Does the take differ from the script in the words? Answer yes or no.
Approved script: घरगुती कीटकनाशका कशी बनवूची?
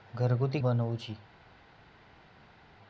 yes